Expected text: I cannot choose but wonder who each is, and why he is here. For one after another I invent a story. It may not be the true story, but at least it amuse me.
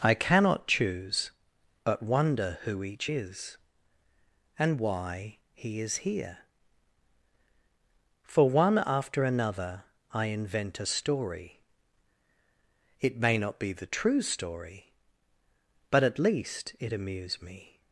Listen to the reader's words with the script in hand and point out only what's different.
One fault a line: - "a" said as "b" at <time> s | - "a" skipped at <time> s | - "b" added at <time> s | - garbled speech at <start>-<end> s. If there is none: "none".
none